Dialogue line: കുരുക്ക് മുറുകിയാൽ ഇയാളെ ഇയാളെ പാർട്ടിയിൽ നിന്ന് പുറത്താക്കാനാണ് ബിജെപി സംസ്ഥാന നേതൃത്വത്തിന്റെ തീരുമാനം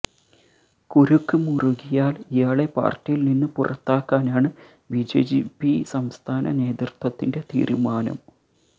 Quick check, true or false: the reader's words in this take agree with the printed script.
false